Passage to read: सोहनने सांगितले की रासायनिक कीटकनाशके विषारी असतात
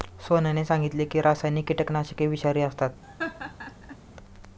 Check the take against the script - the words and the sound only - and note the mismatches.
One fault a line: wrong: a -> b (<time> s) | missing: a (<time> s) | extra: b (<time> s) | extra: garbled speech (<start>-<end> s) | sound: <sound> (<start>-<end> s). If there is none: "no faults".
sound: laugh (3.0-4.0 s)